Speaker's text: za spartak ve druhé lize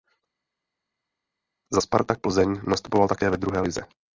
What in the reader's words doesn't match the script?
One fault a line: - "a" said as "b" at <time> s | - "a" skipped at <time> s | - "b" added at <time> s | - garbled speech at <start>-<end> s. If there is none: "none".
- "plzeň nastupoval také" added at 2.2 s